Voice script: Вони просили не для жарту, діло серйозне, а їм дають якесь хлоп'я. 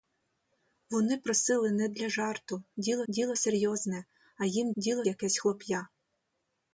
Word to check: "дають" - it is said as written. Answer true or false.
false